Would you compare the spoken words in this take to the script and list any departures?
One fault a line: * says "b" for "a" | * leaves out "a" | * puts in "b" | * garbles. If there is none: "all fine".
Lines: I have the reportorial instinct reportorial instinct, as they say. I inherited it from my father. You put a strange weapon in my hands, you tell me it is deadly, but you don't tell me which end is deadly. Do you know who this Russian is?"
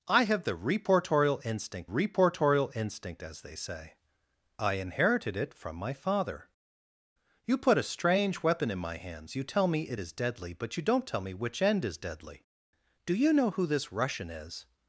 all fine